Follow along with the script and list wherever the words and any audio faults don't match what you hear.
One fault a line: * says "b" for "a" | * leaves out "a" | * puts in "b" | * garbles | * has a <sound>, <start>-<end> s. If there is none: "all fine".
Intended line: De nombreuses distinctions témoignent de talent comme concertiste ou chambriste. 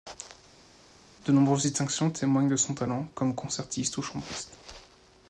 * puts in "son"